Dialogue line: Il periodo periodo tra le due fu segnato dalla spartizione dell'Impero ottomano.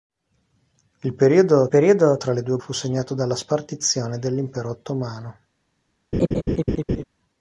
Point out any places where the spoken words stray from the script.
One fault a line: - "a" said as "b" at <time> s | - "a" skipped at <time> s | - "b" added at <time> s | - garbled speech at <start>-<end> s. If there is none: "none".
none